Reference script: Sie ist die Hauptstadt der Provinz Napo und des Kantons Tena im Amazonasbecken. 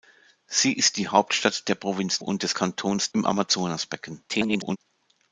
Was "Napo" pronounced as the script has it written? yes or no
no